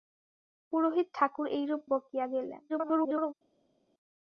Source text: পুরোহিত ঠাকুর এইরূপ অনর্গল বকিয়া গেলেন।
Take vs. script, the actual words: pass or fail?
fail